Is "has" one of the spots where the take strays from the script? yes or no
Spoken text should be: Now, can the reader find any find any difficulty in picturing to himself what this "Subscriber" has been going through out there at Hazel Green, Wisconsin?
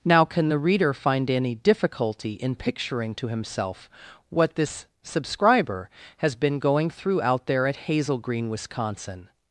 no